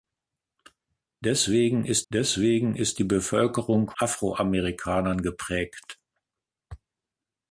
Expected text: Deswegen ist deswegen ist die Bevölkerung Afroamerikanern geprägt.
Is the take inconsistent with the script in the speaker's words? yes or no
no